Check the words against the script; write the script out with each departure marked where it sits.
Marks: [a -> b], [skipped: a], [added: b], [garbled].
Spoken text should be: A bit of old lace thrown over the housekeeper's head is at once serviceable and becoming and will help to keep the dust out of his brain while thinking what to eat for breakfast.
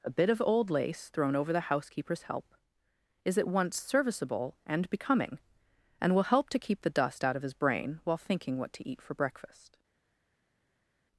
A bit of old lace thrown over the housekeeper's [head -> help] is at once serviceable and becoming and will help to keep the dust out of his brain while thinking what to eat for breakfast.